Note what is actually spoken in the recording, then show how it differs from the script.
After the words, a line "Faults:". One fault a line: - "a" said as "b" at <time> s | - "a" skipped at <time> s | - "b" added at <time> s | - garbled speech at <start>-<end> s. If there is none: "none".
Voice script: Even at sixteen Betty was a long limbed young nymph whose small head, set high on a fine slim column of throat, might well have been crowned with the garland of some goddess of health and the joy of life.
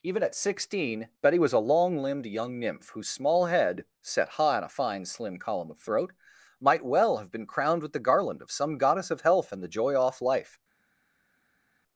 Even at sixteen Betty was a long limbed young nymph whose small head, set high on a fine slim column of throat, might well have been crowned with the garland of some goddess of health and the joy off life.
Faults:
- "of" said as "off" at 9.9 s